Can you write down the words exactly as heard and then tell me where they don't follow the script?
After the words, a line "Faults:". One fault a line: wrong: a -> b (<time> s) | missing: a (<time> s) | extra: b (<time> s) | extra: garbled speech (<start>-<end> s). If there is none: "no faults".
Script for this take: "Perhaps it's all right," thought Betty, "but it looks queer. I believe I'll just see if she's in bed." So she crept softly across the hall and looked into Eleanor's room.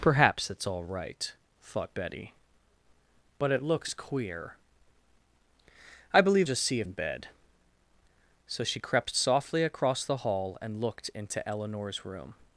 "Perhaps it's all right," thought Betty, "but it looks queer. I believe Just see if in bed." So she crept softly across the hall and looked into Eleanor's room.
Faults:
missing: I'll (6.5 s)
missing: she's (6.9 s)